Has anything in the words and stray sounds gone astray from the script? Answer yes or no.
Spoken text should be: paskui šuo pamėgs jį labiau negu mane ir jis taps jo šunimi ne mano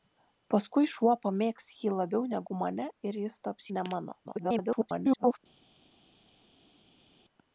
yes